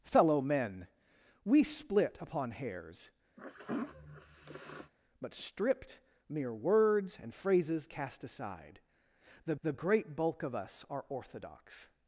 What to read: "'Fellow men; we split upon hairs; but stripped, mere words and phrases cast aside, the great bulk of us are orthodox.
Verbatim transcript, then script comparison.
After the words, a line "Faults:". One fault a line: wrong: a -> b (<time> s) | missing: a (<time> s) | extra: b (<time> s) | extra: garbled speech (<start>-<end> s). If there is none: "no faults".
"'Fellow men; we split upon hairs; but stripped, mere words and phrases cast aside, the the great bulk of us are orthodox.
Faults:
extra: the (9.6 s)